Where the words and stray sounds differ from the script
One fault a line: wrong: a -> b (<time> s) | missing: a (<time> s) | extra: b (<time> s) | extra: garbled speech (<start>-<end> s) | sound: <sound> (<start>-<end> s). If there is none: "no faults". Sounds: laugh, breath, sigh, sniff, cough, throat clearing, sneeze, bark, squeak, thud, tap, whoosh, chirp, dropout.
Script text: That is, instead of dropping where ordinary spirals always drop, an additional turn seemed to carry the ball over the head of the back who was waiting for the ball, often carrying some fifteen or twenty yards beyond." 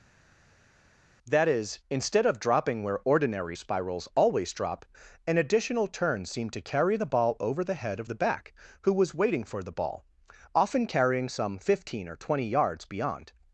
no faults